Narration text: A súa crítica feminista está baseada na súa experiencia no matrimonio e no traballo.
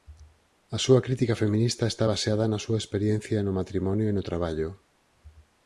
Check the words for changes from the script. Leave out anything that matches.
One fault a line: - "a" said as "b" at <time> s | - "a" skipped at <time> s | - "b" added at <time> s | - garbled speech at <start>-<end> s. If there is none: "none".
none